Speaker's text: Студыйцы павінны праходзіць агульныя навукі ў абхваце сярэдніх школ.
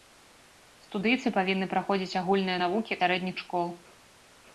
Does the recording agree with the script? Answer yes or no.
no